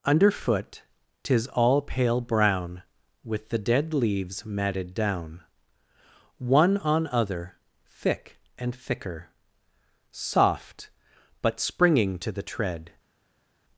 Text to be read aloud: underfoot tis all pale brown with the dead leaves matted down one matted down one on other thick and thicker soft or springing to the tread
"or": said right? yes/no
no